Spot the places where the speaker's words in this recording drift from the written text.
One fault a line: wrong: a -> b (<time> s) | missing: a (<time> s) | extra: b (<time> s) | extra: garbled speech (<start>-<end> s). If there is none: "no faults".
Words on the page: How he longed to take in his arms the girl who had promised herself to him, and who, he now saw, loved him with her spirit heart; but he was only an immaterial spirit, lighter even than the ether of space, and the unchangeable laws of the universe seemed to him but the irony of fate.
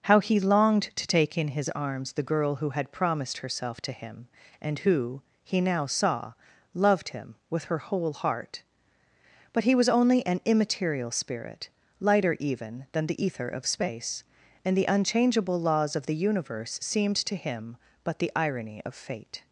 wrong: spirit -> whole (7.8 s)